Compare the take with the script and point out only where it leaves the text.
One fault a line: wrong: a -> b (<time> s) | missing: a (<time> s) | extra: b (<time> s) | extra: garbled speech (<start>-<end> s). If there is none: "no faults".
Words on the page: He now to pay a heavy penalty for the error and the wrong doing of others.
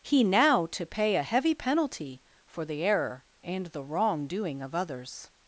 no faults